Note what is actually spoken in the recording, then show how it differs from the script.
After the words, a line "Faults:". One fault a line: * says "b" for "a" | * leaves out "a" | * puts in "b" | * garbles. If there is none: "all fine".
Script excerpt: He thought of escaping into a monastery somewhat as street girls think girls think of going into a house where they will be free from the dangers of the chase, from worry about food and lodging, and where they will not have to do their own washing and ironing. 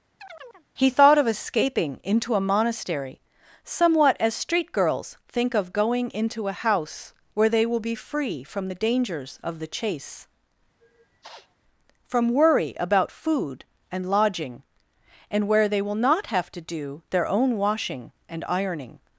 He thought of escaping into a monastery somewhat as street girls think of going into a house where they will be free from the dangers of the chase, from worry about food and lodging, and where they will not have to do their own washing and ironing.
Faults:
* leaves out "girls think"